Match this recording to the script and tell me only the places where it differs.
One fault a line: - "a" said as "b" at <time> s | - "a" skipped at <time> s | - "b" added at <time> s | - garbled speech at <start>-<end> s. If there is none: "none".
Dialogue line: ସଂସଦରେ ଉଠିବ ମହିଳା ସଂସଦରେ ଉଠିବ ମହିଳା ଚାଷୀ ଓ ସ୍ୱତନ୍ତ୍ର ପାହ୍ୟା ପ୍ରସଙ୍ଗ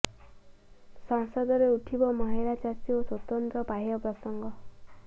- "ସଂସଦରେ ଉଠିବ ମହିଳା" skipped at 2.6 s